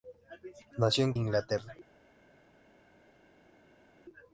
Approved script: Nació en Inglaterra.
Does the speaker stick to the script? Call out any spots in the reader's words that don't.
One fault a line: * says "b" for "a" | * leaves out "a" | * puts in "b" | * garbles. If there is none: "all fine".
all fine